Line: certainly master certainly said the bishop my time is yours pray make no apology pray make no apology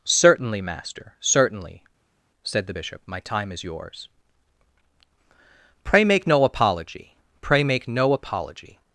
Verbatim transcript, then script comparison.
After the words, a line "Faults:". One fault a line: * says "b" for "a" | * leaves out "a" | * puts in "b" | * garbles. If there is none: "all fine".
certainly master certainly said the bishop my time is yours pray make no apology pray make no apology
Faults:
all fine